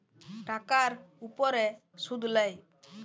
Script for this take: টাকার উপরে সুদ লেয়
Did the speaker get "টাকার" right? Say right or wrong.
right